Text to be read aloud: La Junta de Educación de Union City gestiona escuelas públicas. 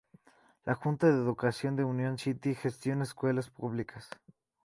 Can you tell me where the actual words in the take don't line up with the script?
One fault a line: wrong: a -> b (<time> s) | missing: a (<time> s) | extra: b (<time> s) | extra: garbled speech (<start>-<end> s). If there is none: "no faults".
no faults